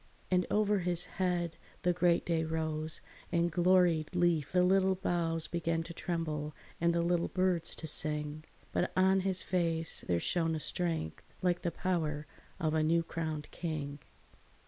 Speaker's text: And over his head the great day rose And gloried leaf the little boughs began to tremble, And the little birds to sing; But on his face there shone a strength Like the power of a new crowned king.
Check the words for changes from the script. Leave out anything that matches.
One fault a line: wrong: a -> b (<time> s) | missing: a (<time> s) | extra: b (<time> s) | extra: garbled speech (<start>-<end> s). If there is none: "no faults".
no faults